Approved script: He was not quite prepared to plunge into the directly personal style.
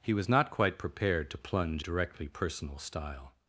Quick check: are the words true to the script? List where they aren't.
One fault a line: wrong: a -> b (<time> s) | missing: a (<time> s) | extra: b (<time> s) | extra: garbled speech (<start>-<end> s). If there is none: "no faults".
missing: into the (1.9 s)